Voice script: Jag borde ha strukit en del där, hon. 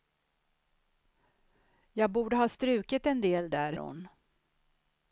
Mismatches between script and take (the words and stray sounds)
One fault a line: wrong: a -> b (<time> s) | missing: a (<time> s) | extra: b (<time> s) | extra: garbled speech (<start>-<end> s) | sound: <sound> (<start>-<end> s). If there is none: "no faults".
no faults